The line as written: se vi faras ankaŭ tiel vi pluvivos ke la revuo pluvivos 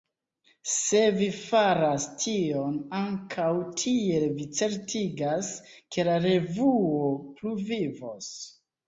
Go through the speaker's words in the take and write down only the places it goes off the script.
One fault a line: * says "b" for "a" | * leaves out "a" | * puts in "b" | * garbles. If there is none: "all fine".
* puts in "tion"
* says "certigas" for "pluvivos"